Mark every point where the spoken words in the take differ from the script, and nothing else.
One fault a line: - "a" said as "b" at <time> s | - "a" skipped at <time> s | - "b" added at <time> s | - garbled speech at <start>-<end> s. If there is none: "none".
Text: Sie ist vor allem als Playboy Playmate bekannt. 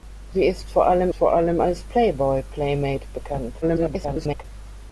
- "vor allem" added at 1.1 s
- garbled speech at 3.6-4.4 s